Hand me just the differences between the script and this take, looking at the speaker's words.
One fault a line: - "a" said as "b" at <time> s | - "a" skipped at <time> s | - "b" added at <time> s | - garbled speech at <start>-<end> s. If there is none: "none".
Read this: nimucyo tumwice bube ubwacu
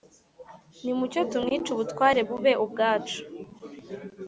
- "ubutware" added at 1.7 s